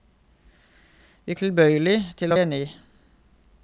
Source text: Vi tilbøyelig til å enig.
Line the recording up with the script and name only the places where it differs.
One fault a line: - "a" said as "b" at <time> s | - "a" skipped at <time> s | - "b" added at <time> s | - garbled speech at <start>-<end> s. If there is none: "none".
none